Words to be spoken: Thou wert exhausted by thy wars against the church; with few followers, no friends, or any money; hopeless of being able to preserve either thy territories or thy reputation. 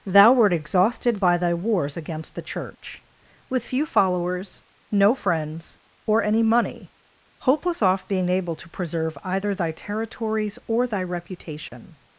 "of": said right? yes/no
no